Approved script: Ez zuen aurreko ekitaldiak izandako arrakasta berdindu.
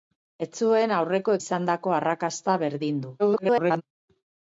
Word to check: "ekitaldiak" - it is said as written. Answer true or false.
false